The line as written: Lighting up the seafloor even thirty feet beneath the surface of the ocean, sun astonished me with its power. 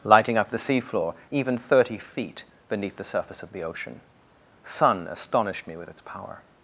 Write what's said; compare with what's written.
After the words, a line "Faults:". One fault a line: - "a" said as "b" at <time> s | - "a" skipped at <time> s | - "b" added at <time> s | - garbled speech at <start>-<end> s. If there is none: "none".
Lighting up the seafloor even thirty feet beneath the surface of the ocean, sun astonished me with its power.
Faults:
none